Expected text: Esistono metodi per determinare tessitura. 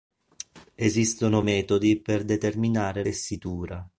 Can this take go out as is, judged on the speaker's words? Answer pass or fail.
pass